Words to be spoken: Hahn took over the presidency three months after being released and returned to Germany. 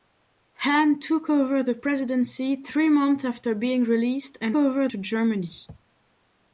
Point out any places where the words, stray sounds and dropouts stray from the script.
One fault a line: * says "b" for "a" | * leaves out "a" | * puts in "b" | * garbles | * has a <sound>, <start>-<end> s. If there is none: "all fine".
* says "over" for "returned"